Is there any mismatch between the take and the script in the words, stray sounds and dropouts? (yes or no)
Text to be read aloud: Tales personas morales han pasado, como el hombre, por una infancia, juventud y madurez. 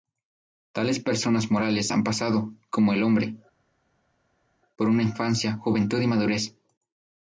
no